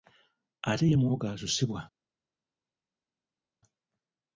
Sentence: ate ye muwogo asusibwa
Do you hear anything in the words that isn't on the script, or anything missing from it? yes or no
no